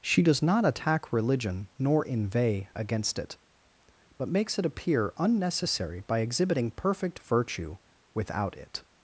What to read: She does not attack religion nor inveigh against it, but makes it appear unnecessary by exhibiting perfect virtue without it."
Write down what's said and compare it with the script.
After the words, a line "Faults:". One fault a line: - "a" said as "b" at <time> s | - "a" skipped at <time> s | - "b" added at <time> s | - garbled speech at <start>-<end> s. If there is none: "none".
She does not attack religion nor inveigh against it, but makes it appear unnecessary by exhibiting perfect virtue without it."
Faults:
none